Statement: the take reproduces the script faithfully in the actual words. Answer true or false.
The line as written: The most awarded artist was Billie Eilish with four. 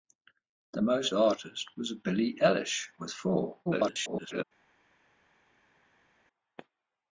false